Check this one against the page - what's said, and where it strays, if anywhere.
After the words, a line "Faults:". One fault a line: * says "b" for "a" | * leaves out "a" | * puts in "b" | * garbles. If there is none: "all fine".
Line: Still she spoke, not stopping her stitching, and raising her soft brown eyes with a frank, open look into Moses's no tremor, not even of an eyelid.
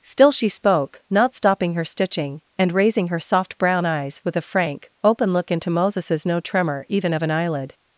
Still she spoke, not stopping her stitching, and raising her soft brown eyes with a frank, open look into Moses's no tremor, even of an eyelid.
Faults:
* leaves out "not"